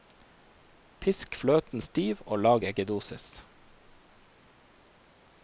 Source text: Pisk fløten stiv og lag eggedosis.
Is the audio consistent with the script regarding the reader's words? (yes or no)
yes